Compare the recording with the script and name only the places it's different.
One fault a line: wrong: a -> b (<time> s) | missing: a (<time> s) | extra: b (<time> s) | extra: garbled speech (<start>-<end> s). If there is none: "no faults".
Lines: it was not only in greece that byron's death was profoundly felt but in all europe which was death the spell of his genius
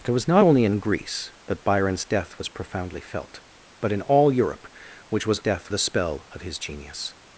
no faults